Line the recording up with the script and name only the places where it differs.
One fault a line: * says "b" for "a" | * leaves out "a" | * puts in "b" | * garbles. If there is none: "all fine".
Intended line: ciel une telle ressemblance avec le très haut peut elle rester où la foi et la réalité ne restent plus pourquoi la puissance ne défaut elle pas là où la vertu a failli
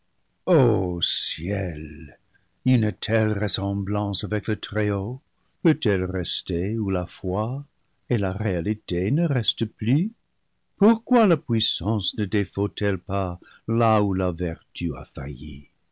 all fine